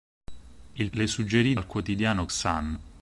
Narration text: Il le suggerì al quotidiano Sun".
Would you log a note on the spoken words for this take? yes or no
no